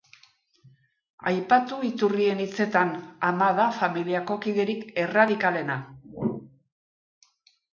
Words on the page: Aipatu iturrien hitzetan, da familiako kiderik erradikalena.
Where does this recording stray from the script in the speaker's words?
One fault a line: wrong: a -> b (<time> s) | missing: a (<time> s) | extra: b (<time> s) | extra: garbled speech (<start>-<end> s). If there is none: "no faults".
extra: ama (3.3 s)